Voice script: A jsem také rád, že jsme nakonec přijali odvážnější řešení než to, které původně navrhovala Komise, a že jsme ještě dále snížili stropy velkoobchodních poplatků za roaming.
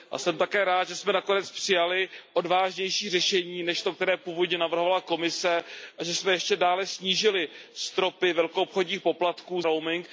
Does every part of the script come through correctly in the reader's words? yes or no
no